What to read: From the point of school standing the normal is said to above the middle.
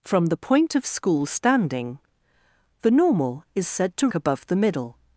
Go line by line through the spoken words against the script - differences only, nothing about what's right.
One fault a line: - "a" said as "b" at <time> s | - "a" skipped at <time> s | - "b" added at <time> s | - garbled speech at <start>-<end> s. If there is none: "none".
none